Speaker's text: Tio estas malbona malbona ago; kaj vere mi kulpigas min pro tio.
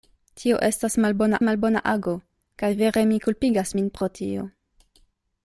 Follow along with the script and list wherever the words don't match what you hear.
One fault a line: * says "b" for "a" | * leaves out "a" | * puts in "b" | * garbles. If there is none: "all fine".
all fine